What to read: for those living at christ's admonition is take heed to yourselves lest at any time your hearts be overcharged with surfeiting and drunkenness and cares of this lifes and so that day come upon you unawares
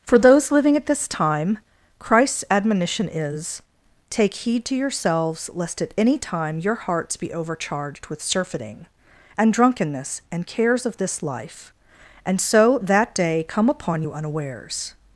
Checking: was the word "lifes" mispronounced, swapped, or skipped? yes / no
yes